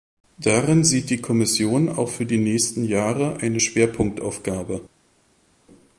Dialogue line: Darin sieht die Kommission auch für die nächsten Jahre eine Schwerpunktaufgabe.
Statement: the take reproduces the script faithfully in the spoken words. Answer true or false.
true